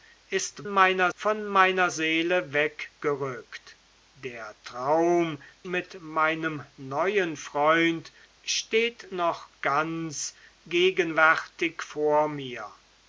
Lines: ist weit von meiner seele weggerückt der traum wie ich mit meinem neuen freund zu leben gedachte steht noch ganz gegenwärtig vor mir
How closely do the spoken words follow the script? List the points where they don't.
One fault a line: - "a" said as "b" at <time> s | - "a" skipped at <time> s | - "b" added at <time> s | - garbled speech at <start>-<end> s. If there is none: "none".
- "weit" said as "meiner" at 0.7 s
- "wie ich" skipped at 5.4 s
- "zu leben gedachte" skipped at 8.1 s